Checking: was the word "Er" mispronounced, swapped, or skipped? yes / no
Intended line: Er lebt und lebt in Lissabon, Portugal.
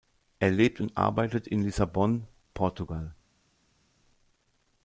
no